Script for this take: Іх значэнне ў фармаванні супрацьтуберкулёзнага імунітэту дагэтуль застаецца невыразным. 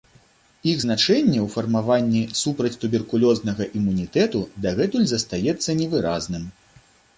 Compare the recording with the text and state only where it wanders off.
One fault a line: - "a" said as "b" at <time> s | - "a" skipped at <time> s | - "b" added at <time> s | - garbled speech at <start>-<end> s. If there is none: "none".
none